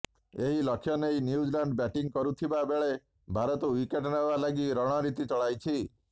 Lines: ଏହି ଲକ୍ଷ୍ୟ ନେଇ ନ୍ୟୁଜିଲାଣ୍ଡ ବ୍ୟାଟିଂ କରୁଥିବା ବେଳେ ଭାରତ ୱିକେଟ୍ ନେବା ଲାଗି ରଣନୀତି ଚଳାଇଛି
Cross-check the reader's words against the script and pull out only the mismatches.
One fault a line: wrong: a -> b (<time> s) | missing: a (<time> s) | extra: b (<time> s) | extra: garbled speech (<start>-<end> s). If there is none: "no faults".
no faults